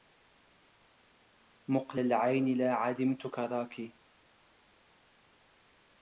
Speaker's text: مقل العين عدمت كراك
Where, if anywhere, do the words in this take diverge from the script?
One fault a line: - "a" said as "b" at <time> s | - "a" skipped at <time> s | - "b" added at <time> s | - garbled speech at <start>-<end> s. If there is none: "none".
- "لا" added at 2.6 s